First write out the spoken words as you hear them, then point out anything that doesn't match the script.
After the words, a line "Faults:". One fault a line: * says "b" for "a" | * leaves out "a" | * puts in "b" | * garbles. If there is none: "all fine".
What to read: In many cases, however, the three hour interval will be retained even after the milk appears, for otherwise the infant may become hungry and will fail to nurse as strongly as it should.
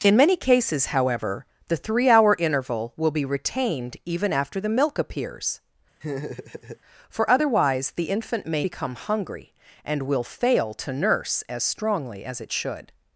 In many cases, however, the three hour interval will be retained even after the milk appears, for otherwise the infant may become hungry and will fail to nurse as strongly as it should.
Faults:
all fine